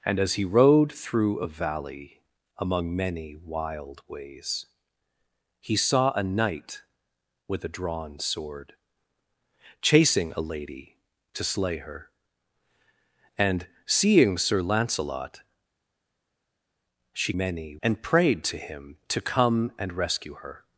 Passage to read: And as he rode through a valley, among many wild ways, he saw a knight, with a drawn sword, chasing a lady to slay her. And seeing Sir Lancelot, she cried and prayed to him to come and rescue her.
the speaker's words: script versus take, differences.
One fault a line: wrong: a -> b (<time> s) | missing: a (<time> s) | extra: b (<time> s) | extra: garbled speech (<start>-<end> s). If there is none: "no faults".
wrong: cried -> many (17.4 s)